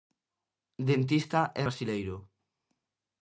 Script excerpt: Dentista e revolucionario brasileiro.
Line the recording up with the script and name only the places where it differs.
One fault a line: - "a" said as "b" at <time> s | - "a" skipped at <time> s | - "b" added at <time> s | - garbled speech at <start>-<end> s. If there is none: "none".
- "revolucionario" skipped at 1.6 s